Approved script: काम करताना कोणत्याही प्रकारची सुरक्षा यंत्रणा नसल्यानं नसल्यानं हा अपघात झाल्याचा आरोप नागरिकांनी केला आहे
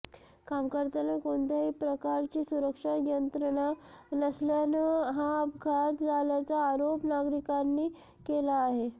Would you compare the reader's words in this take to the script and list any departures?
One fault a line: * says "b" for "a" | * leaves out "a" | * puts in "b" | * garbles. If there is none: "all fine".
* leaves out "नसल्यानं"